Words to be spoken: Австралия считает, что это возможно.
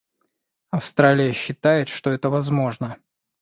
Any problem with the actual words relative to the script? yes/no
no